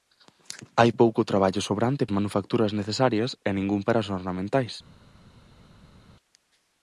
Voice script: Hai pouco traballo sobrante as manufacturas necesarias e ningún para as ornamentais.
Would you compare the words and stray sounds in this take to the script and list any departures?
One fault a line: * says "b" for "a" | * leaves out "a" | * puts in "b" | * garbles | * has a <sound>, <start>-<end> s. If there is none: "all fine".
all fine